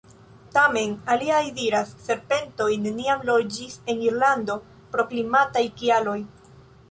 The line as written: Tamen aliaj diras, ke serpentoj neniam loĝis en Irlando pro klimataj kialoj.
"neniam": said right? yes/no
yes